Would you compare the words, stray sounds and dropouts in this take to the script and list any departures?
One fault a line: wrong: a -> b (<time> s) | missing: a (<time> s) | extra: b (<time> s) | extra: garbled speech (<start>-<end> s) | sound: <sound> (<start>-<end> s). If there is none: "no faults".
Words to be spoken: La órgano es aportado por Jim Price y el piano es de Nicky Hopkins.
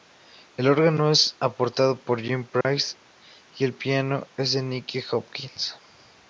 wrong: La -> El (0.6 s)
sound: dropout (2.6-2.6 s)